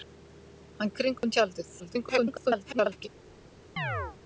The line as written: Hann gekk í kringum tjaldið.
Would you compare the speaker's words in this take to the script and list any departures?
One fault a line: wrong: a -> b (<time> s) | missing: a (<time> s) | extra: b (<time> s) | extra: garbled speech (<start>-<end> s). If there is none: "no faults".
missing: gekk (0.9 s)
extra: garbled speech (1.8-3.1 s)